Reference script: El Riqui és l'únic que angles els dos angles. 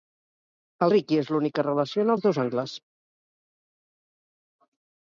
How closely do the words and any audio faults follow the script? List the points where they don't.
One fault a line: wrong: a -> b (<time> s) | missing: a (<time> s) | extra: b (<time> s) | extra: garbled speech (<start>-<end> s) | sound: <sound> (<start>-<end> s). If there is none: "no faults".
wrong: angles -> relaciona (1.7 s)